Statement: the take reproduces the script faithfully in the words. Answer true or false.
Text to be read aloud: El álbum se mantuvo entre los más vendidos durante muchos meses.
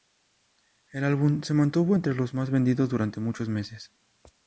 true